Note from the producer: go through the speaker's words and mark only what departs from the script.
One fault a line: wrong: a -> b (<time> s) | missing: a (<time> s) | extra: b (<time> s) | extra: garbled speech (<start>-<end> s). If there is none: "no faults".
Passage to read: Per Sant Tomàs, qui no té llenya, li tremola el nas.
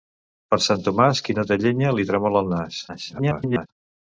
extra: garbled speech (2.9-3.7 s)